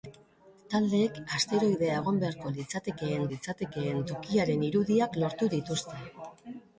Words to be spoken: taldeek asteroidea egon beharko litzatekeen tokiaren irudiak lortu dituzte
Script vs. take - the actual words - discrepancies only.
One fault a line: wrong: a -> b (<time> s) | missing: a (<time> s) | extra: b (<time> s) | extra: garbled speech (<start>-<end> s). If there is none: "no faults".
extra: litzatekeen (3.3 s)